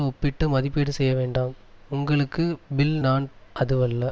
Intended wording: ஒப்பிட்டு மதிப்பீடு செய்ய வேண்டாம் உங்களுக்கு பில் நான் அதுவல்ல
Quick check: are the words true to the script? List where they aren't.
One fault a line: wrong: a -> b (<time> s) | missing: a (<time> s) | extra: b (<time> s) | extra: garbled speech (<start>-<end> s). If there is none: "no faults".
no faults